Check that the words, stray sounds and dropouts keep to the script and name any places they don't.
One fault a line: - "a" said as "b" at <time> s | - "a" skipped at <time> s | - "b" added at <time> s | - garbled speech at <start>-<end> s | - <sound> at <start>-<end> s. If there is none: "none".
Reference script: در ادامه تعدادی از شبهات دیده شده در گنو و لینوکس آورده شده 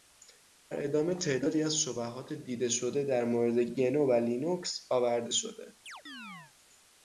- "مورد" added at 3.2 s
- chirp at 5.9-6.5 s